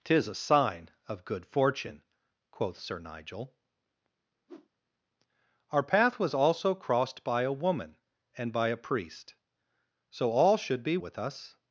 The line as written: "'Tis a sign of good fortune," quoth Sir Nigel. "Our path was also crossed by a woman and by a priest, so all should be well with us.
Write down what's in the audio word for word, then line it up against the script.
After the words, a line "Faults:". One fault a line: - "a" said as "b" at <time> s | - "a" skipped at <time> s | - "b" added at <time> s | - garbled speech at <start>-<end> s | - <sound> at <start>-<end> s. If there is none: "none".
"'Tis a sign of good fortune," quoth Sir Nigel. "Our path was also crossed by a woman and by a priest, so all should be with us.
Faults:
- whoosh at 4.5-4.7 s
- "well" skipped at 11.0 s